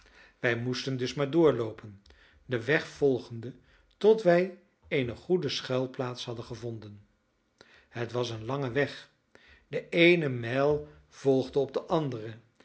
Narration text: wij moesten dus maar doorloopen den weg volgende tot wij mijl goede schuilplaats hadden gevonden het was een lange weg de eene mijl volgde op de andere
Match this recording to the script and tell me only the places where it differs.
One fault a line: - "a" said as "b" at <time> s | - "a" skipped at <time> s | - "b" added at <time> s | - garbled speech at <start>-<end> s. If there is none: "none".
- "mijl" said as "eene" at 4.9 s